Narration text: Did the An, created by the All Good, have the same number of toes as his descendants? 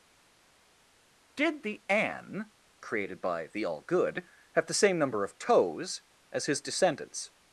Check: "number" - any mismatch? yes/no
no